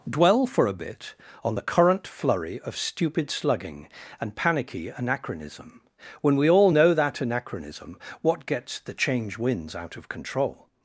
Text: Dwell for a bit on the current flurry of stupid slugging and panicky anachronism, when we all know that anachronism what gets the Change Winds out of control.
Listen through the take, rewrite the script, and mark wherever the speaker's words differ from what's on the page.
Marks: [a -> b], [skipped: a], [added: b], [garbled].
Dwell for a bit on the current flurry of stupid slugging and panicky anachronism, when we all know that anachronism what gets the Change Winds out of control.